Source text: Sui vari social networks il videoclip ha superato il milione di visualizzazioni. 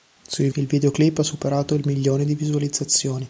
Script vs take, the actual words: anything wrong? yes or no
yes